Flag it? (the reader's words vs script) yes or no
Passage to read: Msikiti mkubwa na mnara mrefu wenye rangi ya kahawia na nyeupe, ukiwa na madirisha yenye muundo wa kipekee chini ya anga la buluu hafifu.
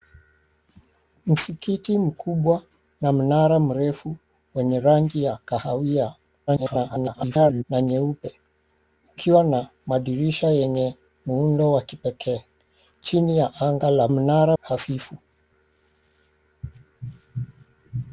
yes